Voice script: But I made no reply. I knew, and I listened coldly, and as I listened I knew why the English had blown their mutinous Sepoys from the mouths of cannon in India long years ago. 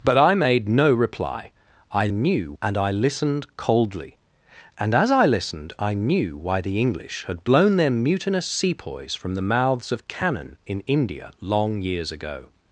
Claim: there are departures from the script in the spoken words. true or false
false